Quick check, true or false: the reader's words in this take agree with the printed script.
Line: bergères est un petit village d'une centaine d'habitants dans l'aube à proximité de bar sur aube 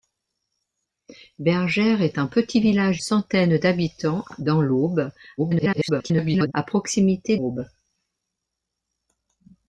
false